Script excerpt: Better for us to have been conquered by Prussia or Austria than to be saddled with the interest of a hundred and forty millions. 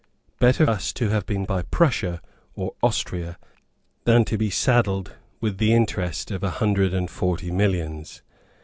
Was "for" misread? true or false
true